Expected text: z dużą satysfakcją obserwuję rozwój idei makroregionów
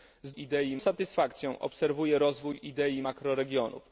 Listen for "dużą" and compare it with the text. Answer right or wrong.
wrong